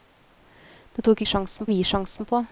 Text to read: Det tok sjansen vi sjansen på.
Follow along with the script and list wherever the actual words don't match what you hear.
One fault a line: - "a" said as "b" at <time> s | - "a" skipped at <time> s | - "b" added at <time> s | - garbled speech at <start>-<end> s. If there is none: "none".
none